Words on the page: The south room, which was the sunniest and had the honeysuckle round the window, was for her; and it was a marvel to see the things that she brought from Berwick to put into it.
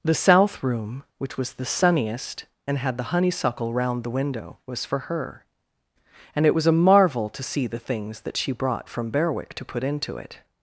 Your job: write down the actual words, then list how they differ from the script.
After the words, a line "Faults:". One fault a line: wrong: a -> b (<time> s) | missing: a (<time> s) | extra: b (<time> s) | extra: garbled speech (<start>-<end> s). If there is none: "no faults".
The south room, which was the sunniest and had the honeysuckle round the window, was for her; and it was a marvel to see the things that she brought from Berwick to put into it.
Faults:
no faults